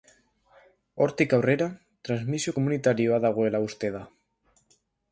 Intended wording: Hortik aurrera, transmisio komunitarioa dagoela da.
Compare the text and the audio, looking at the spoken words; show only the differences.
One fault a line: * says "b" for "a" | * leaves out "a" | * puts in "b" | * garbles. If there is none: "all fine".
* puts in "uste"